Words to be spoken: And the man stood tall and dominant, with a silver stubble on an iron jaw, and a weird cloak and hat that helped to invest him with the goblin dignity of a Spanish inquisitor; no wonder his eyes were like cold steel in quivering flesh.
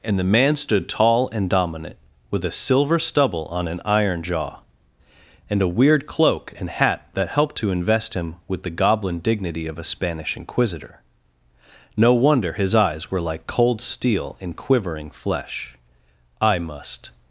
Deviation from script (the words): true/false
true